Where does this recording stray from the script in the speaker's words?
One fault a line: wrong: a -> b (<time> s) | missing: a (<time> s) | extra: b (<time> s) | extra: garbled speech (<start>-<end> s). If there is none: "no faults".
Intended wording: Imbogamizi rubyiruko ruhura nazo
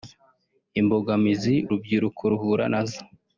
no faults